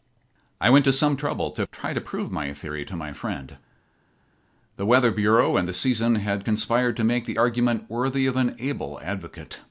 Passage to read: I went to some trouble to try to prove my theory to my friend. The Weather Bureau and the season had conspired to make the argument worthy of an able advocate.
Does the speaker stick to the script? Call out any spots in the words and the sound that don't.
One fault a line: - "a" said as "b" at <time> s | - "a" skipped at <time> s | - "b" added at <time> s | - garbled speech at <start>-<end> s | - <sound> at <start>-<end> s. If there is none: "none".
none